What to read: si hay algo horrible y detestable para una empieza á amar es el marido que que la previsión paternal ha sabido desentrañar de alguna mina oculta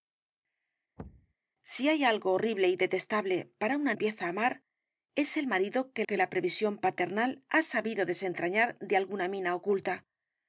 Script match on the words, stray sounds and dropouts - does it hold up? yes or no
no